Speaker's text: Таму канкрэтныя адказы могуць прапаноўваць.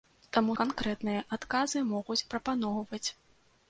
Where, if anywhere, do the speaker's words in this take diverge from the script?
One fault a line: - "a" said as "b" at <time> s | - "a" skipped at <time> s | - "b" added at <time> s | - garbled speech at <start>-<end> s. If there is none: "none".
none